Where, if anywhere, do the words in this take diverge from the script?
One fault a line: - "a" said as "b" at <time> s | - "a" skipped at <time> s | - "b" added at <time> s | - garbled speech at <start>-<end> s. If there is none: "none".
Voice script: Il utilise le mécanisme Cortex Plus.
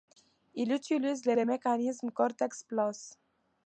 - "le" added at 1.4 s